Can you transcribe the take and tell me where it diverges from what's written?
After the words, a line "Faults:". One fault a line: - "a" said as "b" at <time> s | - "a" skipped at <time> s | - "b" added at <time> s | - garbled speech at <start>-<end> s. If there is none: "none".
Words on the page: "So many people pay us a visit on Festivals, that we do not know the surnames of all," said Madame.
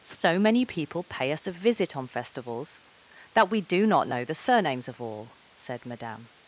"So many people pay us a visit on Festivals, that we do not know the surnames of all," said Madame.
Faults:
none